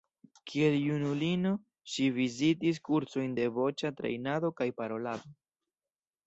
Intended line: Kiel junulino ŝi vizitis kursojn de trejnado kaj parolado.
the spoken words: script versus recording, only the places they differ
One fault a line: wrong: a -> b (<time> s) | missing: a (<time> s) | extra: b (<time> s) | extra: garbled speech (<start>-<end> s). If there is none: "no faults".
extra: voĉa (3.6 s)